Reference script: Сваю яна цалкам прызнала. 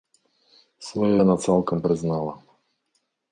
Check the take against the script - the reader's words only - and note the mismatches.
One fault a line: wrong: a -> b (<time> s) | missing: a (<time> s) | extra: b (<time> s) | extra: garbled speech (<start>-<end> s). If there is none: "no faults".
no faults